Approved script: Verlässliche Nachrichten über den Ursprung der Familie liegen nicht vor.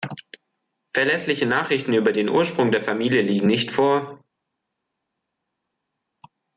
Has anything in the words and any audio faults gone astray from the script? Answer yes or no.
no